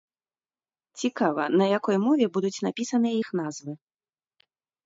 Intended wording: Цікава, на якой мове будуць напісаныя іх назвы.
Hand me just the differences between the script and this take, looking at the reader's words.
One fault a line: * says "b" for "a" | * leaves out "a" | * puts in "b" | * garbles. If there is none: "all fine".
all fine